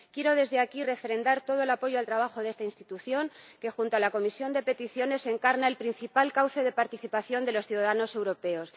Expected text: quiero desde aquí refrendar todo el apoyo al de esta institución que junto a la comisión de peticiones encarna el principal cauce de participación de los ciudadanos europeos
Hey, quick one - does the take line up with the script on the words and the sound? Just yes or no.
no